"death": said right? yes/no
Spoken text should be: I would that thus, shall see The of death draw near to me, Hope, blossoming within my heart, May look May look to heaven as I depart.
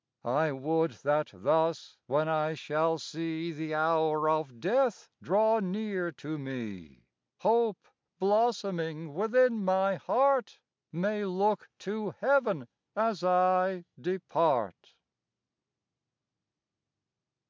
yes